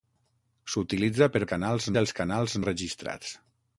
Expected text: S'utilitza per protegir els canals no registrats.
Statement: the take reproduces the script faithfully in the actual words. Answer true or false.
false